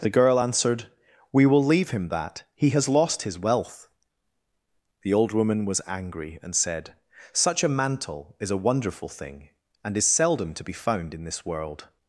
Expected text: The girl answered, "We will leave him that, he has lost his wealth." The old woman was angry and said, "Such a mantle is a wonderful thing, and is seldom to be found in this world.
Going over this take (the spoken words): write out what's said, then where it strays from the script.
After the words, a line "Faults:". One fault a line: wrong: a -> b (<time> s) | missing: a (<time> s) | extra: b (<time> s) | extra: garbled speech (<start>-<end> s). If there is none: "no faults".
The girl answered, "We will leave him that, he has lost his wealth." The old woman was angry and said, "Such a mantle is a wonderful thing, and is seldom to be found in this world.
Faults:
no faults